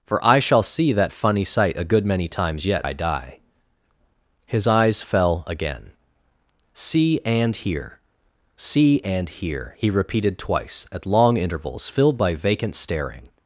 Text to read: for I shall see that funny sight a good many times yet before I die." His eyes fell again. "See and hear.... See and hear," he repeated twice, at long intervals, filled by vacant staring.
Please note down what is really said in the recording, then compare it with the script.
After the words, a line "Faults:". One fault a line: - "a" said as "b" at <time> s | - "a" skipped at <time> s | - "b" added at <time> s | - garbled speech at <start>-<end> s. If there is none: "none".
for I shall see that funny sight a good many times yet I die." His eyes fell again. "See and hear.... See and hear," he repeated twice, at long intervals, filled by vacant staring.
Faults:
- "before" skipped at 2.9 s